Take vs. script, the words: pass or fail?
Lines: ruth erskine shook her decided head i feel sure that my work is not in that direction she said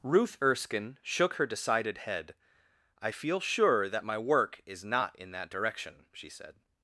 pass